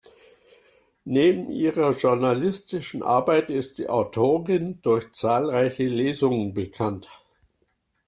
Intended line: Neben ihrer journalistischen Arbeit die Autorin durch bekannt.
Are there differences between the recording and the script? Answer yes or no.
yes